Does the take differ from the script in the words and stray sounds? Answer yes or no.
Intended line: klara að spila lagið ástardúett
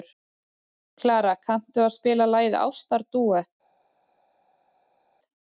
yes